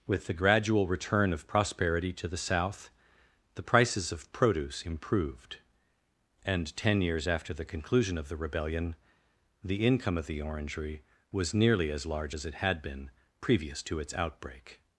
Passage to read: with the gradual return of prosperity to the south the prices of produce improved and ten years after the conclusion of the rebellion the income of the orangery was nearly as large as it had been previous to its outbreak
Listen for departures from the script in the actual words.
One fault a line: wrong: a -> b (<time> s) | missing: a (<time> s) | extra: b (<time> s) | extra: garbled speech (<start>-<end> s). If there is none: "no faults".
no faults